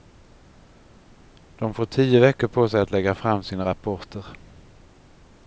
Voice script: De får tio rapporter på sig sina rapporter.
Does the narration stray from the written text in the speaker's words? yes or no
yes